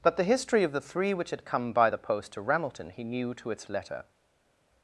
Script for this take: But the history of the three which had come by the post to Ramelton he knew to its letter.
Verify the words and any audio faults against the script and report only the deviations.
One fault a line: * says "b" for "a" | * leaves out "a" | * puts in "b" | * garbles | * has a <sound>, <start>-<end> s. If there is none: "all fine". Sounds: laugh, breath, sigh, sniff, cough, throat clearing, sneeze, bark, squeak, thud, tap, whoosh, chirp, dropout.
all fine